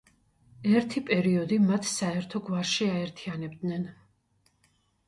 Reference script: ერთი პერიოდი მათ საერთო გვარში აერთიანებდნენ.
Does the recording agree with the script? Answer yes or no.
yes